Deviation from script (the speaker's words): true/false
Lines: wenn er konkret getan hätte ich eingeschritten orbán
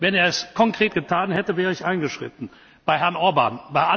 true